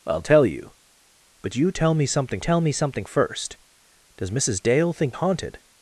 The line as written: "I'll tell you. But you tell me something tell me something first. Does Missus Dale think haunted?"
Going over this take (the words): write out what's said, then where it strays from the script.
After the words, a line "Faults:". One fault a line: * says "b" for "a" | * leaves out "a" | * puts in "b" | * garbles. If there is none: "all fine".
"I'll tell you. But you tell me something tell me something first. Does Missus Dale think haunted?"
Faults:
all fine